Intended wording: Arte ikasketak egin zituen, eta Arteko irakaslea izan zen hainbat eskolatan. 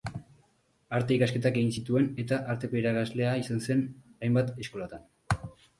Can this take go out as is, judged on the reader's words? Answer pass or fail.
pass